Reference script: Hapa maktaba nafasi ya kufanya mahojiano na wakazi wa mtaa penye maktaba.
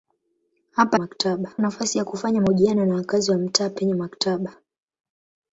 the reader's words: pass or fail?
pass